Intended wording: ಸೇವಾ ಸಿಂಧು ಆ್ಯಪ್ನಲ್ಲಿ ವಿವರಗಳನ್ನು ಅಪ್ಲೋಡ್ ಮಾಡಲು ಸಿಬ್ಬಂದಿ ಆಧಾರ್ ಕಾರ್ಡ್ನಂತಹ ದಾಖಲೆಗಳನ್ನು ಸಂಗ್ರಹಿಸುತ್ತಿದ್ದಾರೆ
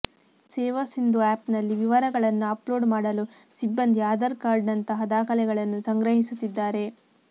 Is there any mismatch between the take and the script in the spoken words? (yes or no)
no